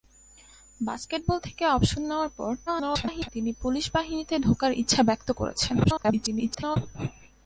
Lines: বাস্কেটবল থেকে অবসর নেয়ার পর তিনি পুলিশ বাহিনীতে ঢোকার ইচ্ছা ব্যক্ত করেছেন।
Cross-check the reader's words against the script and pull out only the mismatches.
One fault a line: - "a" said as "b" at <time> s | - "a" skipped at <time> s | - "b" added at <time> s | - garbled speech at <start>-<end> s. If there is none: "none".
- garbled speech at 2.7-3.3 s
- garbled speech at 5.8-6.8 s